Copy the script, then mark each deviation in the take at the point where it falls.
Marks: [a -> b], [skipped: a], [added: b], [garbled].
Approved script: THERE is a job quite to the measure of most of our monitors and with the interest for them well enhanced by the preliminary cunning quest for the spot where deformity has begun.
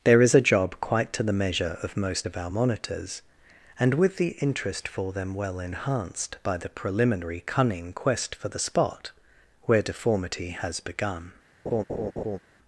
THERE is a job quite to the measure of most of our monitors and with the interest for them well enhanced by the preliminary cunning quest for the spot where deformity has begun.